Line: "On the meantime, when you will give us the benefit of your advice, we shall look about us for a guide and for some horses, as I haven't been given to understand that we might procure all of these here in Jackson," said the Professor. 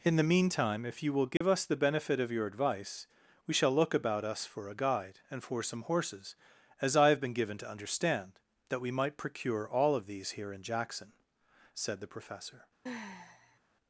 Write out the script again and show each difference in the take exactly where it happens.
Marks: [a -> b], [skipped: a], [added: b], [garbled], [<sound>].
["On -> In] the meantime, [when -> if] you will give [dropout] us the benefit of your advice, we shall look about us for a guide and for some horses, as I [haven't -> have] been given to understand that we might procure all of these here in Jackson," said the Professor. [sigh]